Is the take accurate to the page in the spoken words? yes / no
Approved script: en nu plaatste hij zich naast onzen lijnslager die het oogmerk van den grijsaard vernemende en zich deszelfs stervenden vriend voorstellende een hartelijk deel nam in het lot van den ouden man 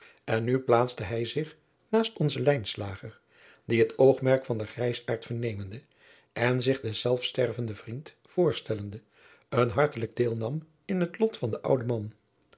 yes